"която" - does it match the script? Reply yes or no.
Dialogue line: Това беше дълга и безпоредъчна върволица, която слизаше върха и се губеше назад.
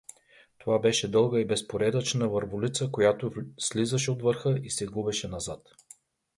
yes